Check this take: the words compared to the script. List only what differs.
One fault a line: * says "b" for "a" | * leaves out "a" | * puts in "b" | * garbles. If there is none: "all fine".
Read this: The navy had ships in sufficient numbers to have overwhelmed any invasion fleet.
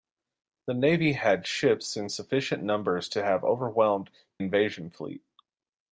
* leaves out "any"